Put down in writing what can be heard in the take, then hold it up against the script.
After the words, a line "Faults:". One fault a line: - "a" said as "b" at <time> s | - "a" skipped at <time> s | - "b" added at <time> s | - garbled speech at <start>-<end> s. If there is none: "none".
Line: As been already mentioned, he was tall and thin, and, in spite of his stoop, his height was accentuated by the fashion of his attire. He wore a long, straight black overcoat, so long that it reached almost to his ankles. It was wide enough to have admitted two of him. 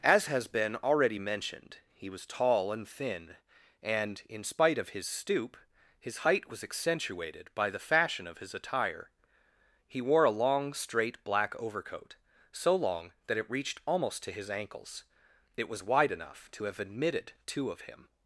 As has been already mentioned, he was tall and thin, and, in spite of his stoop, his height was accentuated by the fashion of his attire. He wore a long, straight black overcoat, so long that it reached almost to his ankles. It was wide enough to have admitted two of him.
Faults:
- "has" added at 0.2 s